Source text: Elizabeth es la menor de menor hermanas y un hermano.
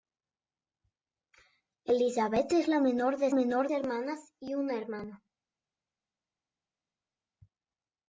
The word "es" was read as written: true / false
true